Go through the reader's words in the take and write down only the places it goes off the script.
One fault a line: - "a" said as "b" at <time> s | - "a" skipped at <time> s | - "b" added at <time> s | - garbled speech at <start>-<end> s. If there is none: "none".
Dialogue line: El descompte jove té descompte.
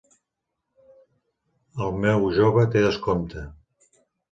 - "descompte" said as "meu" at 2.1 s